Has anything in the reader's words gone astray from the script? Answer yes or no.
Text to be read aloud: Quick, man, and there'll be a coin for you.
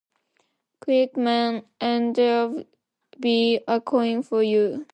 no